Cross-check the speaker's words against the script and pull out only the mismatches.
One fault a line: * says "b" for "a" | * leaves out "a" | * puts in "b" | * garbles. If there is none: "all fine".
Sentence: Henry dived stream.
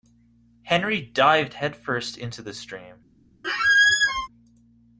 * puts in "headfirst into the"